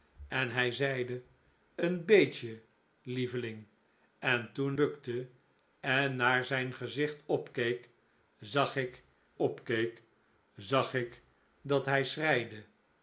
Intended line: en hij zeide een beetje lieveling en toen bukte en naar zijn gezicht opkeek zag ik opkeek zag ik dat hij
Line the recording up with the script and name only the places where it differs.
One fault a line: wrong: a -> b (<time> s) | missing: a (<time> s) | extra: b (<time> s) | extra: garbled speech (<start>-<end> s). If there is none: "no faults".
no faults